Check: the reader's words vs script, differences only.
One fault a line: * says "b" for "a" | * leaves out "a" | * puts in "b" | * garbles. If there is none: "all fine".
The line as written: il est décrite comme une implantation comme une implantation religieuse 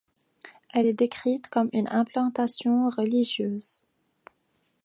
* says "elle" for "il"
* leaves out "comme une implantation"